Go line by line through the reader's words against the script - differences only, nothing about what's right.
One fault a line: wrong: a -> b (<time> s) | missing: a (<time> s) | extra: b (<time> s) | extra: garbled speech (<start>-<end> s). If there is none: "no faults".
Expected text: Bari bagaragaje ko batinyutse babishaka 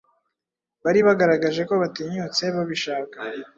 no faults